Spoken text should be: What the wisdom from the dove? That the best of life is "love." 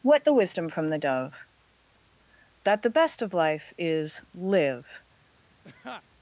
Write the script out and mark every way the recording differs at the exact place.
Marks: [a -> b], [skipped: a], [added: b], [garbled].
What the wisdom from the dove? That the best of life is ["love." -> live]